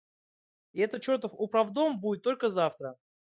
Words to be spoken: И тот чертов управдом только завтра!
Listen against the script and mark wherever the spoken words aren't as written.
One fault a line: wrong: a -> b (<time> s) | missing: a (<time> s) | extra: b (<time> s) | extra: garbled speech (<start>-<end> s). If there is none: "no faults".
wrong: тот -> этот (0.8 s)
extra: будет (2.0 s)